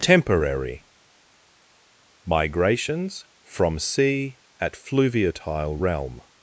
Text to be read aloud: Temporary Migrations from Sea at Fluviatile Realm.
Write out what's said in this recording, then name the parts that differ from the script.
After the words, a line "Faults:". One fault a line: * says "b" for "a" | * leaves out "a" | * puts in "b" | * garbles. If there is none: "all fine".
Temporary Migrations from Sea at Fluviatile Realm.
Faults:
all fine